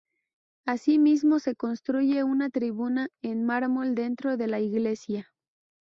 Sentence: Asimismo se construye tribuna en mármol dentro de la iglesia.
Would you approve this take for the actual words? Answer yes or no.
no